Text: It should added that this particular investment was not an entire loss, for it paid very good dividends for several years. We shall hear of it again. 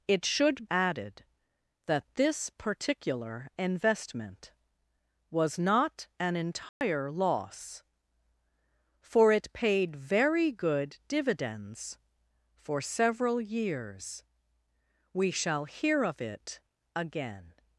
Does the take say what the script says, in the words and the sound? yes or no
no